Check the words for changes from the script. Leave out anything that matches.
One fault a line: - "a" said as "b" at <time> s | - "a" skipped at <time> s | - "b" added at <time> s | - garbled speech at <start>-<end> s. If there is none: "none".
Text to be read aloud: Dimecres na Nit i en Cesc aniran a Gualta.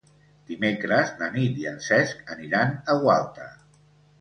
none